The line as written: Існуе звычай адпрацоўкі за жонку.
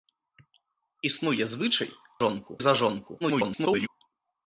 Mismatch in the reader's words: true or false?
true